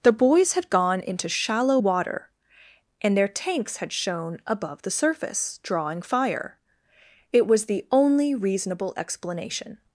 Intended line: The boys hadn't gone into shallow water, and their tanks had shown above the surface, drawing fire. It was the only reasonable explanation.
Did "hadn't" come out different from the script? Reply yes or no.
yes